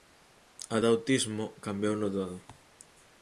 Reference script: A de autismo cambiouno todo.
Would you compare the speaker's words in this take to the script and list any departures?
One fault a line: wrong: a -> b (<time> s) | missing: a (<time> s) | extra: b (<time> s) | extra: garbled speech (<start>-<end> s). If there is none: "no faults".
no faults